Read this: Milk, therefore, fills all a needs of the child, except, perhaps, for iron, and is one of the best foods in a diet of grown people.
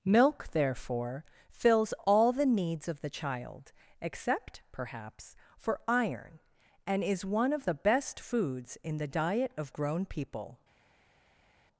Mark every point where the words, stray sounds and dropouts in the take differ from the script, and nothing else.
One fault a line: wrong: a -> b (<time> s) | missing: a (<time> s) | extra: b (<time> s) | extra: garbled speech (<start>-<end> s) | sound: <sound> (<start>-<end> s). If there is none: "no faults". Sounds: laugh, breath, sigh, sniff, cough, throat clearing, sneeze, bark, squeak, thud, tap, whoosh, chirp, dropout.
wrong: a -> the (2.3 s)
wrong: a -> the (9.0 s)